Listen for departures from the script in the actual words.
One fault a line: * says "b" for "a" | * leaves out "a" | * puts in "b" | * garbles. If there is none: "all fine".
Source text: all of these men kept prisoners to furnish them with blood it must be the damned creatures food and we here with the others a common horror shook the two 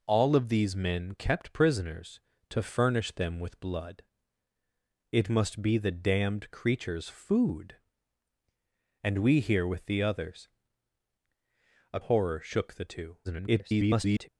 * leaves out "common"
* garbles